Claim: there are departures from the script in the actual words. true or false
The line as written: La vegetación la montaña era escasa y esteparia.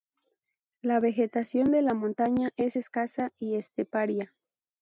true